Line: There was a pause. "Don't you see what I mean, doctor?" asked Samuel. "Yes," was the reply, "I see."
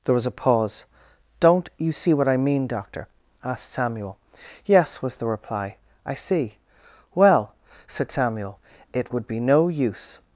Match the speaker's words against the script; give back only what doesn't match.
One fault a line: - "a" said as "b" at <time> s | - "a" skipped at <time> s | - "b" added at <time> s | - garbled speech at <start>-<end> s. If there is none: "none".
- "Well said Samuel It would be no use" added at 7.1 s